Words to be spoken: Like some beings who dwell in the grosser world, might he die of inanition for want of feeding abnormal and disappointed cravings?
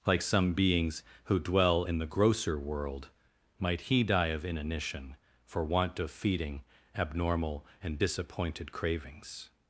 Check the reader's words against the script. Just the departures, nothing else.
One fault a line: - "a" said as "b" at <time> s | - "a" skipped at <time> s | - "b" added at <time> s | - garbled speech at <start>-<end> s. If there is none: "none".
none